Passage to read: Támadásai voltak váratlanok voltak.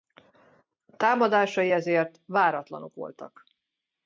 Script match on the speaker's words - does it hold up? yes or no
no